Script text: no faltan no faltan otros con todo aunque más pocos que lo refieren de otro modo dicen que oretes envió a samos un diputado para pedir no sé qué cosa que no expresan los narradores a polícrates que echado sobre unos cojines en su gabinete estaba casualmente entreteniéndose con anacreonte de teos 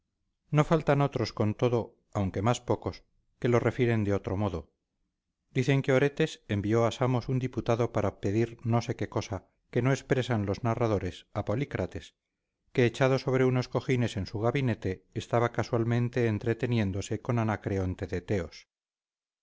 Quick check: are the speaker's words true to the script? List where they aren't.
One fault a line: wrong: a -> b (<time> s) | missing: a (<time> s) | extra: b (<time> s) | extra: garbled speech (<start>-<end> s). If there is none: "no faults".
missing: no faltan (1.0 s)